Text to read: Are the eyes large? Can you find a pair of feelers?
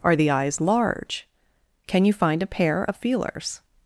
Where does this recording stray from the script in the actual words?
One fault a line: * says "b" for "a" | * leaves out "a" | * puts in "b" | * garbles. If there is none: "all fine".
all fine